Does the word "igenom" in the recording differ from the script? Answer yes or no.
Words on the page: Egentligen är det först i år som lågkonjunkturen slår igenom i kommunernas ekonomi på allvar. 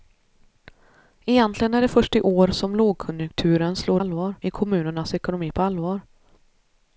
yes